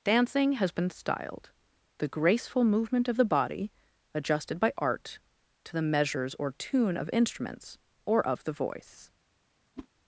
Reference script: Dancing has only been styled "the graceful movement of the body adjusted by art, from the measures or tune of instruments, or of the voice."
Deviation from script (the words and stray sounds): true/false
true